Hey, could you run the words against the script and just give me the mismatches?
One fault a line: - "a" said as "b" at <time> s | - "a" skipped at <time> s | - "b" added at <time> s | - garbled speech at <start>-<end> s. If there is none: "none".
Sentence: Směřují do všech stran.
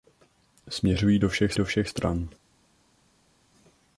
- "do všech" added at 1.5 s